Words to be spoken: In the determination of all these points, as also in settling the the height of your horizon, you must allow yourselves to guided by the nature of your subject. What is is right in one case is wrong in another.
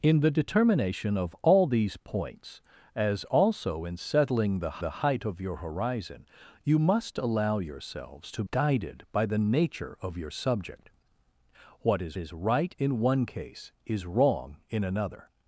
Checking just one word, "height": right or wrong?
right